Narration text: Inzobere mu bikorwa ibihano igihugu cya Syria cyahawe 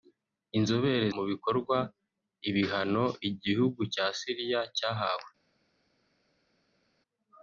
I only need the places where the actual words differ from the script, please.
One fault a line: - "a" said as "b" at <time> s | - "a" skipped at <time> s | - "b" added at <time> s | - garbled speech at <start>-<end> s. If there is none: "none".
none